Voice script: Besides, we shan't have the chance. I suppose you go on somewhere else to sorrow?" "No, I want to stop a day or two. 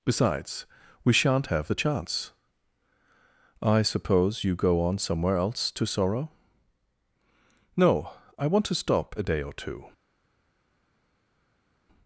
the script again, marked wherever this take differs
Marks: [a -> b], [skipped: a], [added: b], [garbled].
Besides, we shan't have the chance. I suppose you go on somewhere else to sorrow?" "No, I want to stop a day or two.